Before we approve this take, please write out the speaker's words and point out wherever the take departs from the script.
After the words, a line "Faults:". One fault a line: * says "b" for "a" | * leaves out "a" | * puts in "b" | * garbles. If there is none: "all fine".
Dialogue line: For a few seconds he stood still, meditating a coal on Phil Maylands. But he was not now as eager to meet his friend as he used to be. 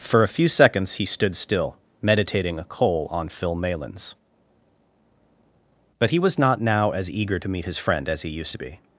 For a few seconds he stood still, meditating a coal on Phil Maylands. But he was not now as eager to meet his friend as he used to be.
Faults:
all fine